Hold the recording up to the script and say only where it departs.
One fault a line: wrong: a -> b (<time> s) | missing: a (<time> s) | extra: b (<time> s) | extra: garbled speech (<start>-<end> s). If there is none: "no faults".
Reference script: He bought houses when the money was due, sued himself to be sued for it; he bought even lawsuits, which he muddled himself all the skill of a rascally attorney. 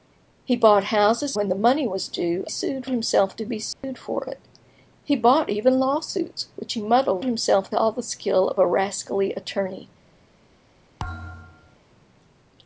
no faults